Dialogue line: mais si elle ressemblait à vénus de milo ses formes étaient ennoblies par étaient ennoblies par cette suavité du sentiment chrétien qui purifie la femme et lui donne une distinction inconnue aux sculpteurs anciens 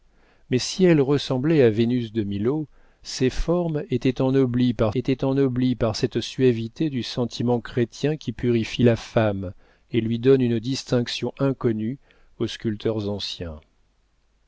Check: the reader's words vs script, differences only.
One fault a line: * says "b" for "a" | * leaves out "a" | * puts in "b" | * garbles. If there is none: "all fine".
all fine